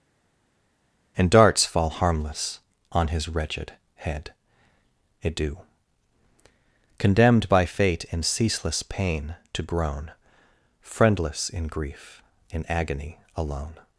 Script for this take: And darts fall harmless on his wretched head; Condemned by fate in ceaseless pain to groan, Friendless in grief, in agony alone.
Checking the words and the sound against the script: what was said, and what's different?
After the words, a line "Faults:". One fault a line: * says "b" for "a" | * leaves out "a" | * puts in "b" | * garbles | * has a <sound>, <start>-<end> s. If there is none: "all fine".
And darts fall harmless on his wretched head; adieu Condemned by fate in ceaseless pain to groan, Friendless in grief, in agony alone.
Faults:
* puts in "adieu"